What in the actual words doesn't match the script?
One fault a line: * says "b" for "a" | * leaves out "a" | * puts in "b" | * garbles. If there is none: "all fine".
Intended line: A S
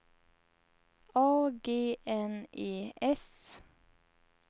* puts in "G N E"